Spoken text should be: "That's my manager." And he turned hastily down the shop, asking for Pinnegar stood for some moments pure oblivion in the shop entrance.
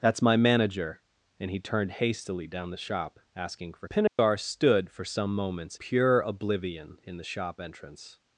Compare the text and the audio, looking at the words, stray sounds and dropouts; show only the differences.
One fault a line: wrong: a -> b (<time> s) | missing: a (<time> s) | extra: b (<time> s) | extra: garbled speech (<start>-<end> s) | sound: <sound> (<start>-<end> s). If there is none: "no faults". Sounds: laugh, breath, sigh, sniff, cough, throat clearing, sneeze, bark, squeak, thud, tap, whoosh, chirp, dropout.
sound: dropout (4.1-4.2 s)